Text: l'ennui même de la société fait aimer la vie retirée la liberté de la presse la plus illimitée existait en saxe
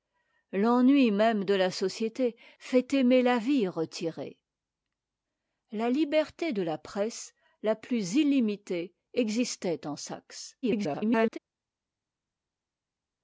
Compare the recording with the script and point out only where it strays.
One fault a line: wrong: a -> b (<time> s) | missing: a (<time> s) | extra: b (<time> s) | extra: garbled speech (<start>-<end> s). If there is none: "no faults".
extra: garbled speech (10.6-11.4 s)